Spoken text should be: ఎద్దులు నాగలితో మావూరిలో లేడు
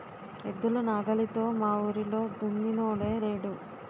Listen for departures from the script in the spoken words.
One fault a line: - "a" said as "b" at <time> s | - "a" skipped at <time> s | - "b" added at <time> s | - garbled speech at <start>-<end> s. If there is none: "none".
- "దున్నినోడే" added at 2.4 s